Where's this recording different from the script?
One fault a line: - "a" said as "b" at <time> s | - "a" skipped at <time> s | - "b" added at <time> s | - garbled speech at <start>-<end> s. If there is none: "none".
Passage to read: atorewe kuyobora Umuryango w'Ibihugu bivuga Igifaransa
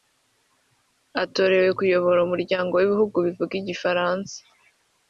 none